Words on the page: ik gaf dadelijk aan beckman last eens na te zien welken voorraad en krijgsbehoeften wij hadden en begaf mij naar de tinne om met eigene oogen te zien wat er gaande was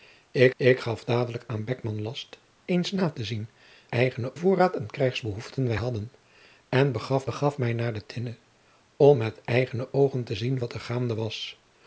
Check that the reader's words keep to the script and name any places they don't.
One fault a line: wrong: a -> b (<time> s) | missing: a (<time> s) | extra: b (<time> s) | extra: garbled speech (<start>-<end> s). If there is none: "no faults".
extra: ik (0.6 s)
wrong: welken -> eigene (3.9 s)
extra: begaf (7.2 s)